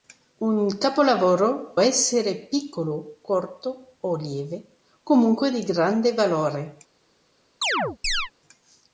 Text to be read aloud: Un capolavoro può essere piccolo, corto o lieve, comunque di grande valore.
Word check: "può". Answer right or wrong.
wrong